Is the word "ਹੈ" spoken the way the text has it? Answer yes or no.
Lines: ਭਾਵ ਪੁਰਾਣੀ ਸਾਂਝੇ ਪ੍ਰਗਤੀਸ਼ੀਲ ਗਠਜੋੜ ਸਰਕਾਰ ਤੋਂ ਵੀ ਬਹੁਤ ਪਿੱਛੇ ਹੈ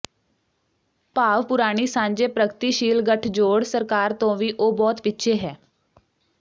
yes